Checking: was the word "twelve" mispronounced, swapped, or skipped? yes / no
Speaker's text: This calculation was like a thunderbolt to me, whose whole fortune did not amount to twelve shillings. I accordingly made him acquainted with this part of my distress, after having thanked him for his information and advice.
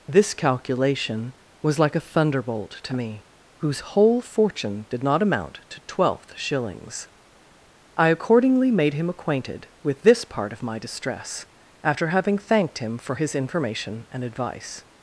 yes